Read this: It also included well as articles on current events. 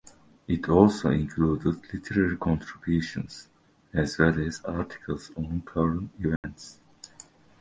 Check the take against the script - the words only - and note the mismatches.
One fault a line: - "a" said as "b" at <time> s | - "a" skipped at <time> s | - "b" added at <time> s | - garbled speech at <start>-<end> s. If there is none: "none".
- "literary contributions as" added at 1.9 s